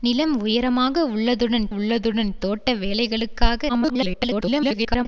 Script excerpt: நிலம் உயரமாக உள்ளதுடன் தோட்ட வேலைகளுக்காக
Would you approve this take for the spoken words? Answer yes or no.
no